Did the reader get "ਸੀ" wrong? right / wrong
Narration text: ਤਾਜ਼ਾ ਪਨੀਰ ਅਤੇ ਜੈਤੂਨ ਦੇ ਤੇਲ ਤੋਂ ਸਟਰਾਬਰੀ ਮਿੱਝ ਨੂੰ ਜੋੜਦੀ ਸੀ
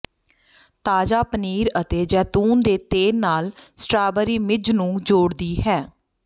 wrong